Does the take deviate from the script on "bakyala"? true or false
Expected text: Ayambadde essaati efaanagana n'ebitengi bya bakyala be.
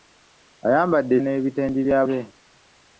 true